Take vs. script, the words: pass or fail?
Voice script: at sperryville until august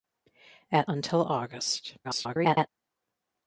fail